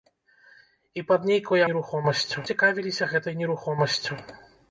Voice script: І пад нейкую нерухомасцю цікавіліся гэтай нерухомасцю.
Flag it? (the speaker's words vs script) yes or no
no